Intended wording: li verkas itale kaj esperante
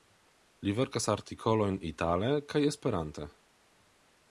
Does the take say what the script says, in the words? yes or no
no